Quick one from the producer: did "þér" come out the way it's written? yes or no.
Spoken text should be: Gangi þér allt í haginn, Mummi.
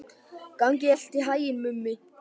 no